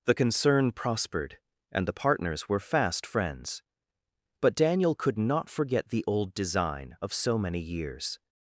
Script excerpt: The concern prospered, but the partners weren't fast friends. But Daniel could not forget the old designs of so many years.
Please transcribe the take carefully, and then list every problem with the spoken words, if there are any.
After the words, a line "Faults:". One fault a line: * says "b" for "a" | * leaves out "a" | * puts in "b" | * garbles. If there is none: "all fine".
The concern prospered, and the partners were fast friends. But Daniel could not forget the old design of so many years.
Faults:
* says "and" for "but"
* says "were" for "weren't"
* says "design" for "designs"